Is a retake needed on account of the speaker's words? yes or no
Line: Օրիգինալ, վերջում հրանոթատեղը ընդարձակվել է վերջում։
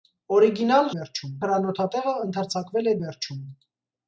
no